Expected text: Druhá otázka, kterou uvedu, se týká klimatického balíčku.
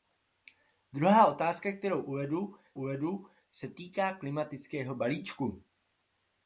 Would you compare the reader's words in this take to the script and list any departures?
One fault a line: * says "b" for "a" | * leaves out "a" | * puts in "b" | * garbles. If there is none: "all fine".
* puts in "uvedu"